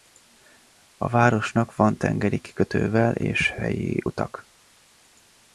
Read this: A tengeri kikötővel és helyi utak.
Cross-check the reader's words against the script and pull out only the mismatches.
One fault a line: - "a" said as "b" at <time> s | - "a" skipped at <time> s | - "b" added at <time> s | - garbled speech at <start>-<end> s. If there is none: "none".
- "városnak van" added at 1.1 s